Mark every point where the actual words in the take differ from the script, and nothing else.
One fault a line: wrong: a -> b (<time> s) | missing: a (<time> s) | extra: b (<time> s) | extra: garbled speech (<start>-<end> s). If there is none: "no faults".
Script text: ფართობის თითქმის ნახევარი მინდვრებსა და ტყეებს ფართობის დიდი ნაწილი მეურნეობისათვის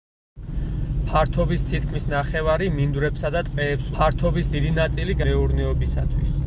no faults